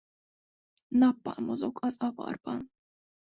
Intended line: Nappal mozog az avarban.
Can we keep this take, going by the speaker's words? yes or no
yes